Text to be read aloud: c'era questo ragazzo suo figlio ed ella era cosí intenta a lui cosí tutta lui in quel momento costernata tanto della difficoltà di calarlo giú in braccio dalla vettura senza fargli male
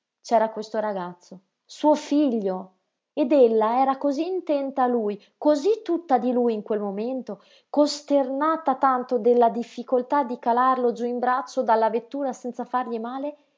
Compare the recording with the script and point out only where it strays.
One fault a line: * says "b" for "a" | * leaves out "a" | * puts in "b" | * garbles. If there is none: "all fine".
* puts in "di"